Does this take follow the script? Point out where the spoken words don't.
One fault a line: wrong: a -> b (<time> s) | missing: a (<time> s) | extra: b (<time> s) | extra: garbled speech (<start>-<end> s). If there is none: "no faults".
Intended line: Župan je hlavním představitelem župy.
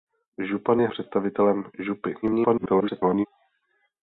missing: hlavním (0.9 s)
extra: garbled speech (2.2-3.3 s)